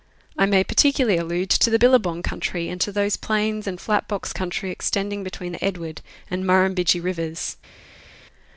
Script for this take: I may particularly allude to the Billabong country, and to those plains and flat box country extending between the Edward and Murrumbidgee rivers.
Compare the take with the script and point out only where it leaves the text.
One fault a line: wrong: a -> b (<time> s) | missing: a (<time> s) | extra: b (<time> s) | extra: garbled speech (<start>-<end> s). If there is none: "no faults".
no faults